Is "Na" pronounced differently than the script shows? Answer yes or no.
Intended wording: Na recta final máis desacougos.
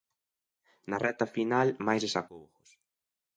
no